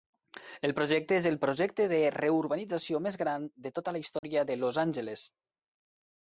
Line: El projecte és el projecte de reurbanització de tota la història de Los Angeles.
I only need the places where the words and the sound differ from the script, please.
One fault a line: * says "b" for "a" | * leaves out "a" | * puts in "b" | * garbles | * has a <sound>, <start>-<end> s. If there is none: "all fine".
* puts in "més gran"
* has a dropout, 4.2-4.2 s